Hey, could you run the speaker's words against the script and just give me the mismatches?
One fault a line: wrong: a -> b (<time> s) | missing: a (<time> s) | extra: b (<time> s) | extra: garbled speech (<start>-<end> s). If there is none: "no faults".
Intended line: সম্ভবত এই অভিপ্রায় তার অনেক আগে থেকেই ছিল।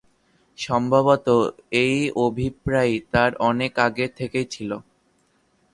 no faults